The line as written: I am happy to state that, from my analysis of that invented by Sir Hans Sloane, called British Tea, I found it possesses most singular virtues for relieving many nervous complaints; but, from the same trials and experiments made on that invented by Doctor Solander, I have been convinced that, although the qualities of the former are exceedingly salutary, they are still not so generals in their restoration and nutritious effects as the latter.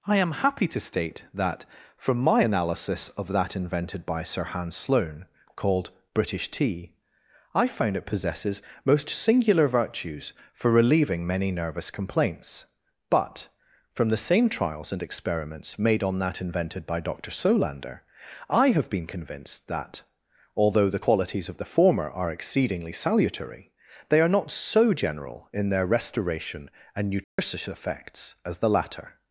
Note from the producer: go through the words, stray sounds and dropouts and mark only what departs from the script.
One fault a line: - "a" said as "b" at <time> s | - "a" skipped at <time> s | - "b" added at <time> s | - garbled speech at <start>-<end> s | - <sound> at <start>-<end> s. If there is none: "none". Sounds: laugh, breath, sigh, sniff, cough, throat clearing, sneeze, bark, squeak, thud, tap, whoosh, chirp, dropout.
- "still" skipped at 24.3 s
- "generals" said as "general" at 24.9 s
- dropout at 27.2-27.4 s